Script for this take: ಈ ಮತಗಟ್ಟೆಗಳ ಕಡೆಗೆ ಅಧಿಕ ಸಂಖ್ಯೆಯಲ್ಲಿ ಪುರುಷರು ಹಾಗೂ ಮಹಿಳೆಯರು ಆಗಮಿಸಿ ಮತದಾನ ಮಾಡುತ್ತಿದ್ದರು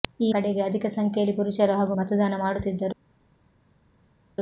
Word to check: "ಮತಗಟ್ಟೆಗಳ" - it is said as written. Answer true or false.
false